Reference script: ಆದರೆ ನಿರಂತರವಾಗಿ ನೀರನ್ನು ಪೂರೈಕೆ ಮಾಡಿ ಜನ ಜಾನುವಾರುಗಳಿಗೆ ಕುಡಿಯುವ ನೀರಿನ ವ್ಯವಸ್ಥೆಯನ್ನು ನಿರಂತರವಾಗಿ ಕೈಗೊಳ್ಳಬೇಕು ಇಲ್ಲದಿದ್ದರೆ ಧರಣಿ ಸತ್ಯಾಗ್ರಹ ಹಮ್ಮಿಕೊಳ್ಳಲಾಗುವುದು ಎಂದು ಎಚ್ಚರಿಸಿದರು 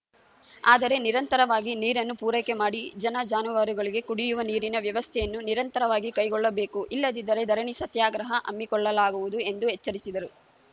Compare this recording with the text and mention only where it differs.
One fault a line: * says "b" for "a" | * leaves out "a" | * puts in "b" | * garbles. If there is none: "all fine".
all fine